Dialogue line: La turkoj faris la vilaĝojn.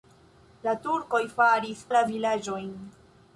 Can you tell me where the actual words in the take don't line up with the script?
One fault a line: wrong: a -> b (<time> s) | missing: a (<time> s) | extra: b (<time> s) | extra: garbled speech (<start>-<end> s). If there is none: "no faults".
no faults